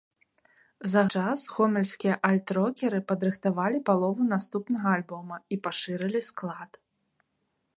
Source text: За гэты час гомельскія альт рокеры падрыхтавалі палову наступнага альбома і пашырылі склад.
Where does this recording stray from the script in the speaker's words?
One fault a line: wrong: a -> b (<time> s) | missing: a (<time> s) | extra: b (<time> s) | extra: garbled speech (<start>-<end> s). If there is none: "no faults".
missing: гэты (1.0 s)